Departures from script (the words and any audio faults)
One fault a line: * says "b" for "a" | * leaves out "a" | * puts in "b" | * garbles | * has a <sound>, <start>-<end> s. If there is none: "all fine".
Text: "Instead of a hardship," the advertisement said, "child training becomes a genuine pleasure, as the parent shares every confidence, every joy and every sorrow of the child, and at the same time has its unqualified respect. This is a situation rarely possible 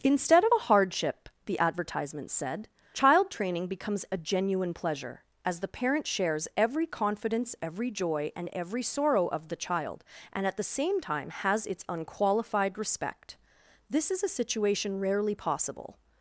all fine